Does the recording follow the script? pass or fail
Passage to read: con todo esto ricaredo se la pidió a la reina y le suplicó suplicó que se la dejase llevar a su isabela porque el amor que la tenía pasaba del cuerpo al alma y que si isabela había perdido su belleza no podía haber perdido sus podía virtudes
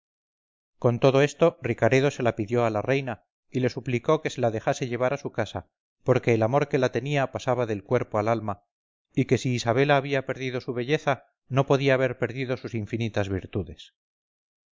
fail